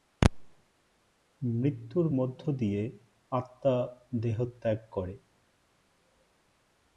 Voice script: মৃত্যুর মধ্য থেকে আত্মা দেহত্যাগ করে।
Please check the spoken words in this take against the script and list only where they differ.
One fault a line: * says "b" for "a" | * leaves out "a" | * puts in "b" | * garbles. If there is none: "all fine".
* says "দিয়ে" for "থেকে"